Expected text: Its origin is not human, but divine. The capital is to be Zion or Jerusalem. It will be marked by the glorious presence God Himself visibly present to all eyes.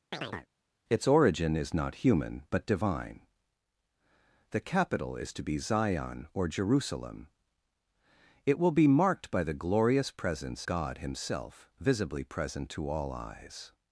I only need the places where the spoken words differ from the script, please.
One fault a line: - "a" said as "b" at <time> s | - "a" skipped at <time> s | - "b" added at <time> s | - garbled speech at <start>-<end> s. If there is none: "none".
none